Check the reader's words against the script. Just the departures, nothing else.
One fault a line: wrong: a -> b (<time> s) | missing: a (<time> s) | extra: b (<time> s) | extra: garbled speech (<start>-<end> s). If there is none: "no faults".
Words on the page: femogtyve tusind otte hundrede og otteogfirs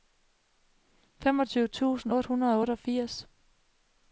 no faults